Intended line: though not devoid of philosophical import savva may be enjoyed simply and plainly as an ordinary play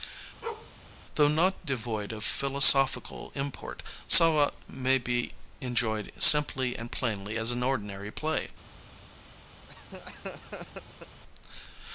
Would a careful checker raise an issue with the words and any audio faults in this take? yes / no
yes